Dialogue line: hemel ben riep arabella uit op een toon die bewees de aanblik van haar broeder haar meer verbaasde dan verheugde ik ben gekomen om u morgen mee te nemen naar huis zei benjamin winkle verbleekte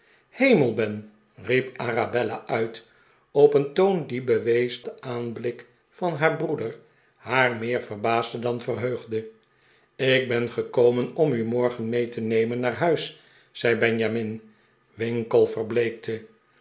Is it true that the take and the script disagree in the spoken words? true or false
false